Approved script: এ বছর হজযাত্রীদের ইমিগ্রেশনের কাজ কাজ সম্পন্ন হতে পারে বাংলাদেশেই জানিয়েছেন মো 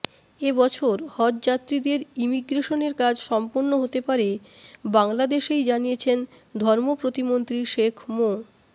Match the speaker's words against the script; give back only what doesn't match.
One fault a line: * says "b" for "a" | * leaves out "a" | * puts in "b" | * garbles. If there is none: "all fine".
* leaves out "কাজ"
* puts in "ধর্ম প্রতিমন্ত্রী শেখ"